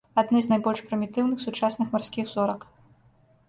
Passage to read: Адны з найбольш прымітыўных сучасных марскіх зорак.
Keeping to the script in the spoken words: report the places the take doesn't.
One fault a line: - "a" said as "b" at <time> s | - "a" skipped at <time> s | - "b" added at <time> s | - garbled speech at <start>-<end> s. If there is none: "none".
none